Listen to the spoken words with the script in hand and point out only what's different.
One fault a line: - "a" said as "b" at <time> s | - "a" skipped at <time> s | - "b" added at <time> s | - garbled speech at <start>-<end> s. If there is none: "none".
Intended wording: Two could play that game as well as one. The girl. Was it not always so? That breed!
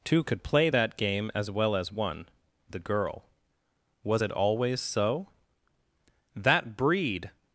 - "not" skipped at 4.3 s